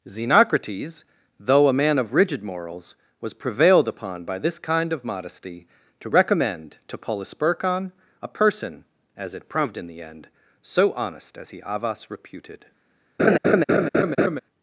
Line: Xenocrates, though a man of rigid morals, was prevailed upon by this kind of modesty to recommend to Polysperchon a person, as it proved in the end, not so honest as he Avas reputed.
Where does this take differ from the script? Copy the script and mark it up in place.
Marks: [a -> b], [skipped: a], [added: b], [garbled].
Xenocrates, though a man of rigid morals, was prevailed upon by this kind of modesty to recommend to Polysperchon a person, as it proved in the end, [skipped: not] so honest as he Avas reputed.